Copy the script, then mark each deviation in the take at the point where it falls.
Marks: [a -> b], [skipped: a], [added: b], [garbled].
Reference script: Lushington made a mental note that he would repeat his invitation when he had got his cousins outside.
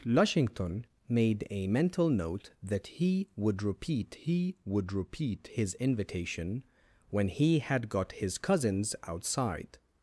Lushington made a mental note that he would repeat [added: he would repeat] his invitation when he had got his cousins outside.